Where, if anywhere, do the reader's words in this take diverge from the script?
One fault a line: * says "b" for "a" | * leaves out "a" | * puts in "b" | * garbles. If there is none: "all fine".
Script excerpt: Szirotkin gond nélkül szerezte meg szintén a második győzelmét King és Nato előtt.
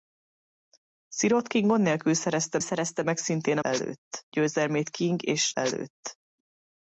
* puts in "szerezte"
* says "előtt" for "második"
* leaves out "Nato"